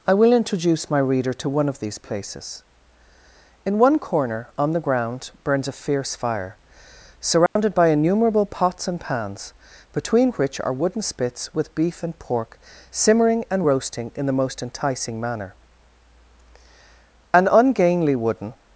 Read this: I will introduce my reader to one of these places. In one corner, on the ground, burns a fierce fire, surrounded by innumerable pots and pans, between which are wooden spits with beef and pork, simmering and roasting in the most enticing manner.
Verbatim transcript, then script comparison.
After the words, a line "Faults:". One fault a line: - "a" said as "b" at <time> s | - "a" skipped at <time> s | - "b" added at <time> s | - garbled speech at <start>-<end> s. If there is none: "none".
I will introduce my reader to one of these places. In one corner, on the ground, burns a fierce fire, surrounded by innumerable pots and pans, between which are wooden spits with beef and pork, simmering and roasting in the most enticing manner. An ungainly wooden
Faults:
- "An ungainly wooden" added at 17.3 s